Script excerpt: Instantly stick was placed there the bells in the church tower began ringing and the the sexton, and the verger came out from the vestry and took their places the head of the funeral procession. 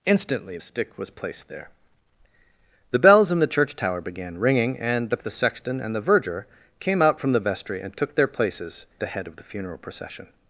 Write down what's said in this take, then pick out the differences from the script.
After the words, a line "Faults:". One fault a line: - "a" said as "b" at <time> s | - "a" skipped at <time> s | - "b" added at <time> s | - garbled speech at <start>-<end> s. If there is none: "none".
Instantly stick was placed there the bells in the church tower began ringing and the the sexton, and the verger came out from the vestry and took their places the head of the funeral procession.
Faults:
none